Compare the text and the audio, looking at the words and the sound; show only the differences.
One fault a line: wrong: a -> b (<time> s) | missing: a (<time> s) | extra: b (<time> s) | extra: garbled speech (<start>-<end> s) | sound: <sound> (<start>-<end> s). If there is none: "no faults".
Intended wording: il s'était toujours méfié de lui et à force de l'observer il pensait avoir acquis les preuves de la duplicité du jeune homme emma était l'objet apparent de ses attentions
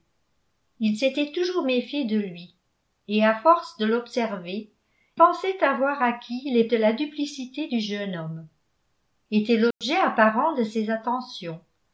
missing: il (4.7 s)
missing: preuves (6.6 s)
missing: emma (8.5 s)
sound: dropout (9.7-9.8 s)